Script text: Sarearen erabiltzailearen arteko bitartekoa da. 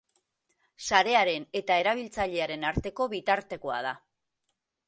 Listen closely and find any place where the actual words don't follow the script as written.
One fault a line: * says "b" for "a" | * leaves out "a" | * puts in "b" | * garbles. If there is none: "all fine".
* puts in "eta"